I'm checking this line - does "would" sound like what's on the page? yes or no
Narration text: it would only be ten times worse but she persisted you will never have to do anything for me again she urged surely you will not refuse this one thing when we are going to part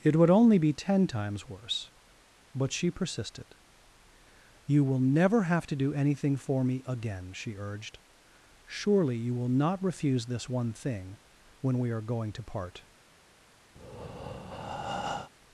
yes